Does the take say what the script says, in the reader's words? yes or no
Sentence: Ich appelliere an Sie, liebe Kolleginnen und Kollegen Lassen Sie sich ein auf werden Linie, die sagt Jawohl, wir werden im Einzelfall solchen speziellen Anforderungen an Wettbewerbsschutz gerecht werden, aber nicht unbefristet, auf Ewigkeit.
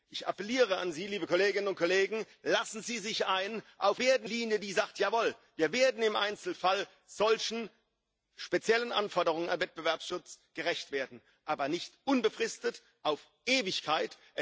yes